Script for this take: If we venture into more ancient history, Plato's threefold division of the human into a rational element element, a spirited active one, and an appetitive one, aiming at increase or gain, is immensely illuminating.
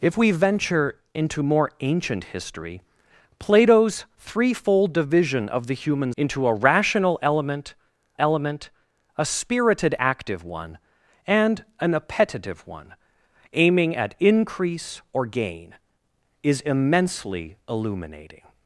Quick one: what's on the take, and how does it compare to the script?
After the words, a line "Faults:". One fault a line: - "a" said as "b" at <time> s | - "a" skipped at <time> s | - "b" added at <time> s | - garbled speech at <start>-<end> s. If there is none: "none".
If we venture into more ancient history, Plato's threefold division of the human into a rational element element, a spirited active one, and an appetitive one, aiming at increase or gain, is immensely illuminating.
Faults:
none